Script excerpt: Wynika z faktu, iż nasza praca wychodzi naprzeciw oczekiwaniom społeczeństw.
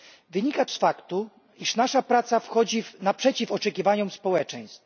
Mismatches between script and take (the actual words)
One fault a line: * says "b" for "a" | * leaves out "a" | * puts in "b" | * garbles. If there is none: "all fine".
all fine